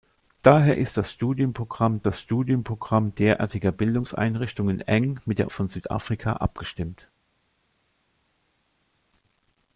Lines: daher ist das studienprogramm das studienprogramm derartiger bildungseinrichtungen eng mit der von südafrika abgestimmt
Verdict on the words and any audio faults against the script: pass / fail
pass